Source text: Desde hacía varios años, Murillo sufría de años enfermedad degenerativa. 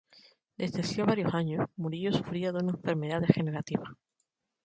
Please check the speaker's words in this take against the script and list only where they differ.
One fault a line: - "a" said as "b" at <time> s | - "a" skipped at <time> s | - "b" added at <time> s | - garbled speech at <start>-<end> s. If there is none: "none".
- "años" said as "una" at 2.6 s